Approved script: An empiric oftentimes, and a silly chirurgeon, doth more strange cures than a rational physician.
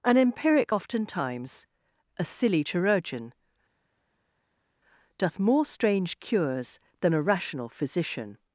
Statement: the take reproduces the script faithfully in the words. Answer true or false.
false